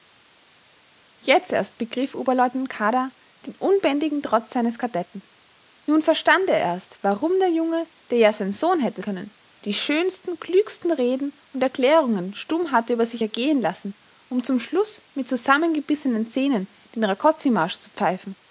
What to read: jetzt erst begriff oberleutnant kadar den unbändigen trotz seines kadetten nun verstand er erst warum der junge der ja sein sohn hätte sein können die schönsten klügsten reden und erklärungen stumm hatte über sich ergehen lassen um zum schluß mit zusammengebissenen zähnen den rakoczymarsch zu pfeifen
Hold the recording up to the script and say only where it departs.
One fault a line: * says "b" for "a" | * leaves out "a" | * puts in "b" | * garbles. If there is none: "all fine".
* leaves out "sein"